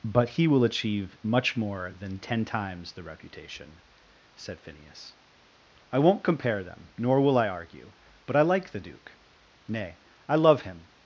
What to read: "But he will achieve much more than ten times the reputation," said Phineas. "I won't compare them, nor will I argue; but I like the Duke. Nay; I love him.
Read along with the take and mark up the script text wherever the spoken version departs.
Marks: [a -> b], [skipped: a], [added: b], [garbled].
"But he will achieve much more than ten times the reputation," said Phineas. "I won't compare them, nor will I argue; but I like the Duke. Nay; I love him.